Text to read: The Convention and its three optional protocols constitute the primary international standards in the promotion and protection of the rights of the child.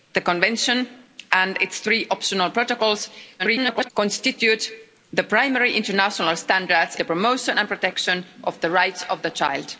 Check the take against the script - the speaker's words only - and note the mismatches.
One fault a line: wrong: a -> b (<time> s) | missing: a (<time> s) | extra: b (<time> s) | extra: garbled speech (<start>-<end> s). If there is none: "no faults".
extra: garbled speech (3.4-3.9 s)
missing: in (7.0 s)